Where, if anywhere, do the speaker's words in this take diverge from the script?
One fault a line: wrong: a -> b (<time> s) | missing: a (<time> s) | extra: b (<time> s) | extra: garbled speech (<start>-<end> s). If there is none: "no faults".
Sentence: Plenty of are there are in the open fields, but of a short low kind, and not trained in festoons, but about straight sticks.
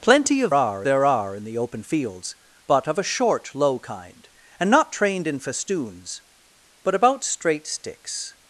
no faults